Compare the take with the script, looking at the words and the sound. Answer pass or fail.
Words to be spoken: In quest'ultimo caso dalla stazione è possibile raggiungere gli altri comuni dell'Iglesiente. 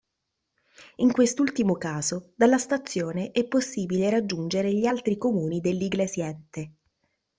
pass